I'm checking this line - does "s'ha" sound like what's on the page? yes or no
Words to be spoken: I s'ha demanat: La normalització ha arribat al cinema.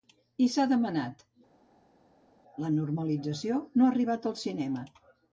yes